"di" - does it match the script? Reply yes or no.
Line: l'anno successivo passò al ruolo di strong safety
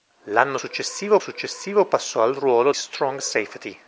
no